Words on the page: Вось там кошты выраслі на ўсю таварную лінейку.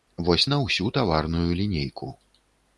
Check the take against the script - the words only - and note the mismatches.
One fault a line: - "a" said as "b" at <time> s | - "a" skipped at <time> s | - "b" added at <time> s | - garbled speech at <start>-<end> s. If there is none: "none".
- "там кошты выраслі" skipped at 0.5 s